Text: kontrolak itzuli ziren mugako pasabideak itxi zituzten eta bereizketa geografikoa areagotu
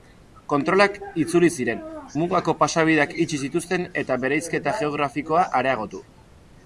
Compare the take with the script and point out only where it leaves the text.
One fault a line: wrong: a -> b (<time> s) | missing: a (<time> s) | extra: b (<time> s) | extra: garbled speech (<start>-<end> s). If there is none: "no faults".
no faults